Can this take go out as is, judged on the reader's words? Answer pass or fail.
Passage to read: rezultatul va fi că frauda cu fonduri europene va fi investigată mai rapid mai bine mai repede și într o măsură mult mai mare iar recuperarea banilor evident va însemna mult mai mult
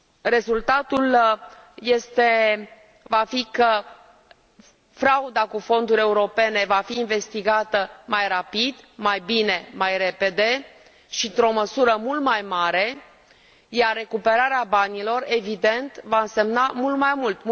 pass